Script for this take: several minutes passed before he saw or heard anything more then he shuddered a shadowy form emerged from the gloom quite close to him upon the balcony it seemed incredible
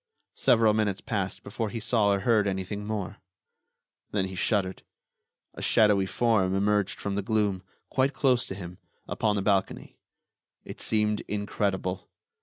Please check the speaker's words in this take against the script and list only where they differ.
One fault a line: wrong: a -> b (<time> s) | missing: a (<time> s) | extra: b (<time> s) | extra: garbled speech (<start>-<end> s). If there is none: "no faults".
no faults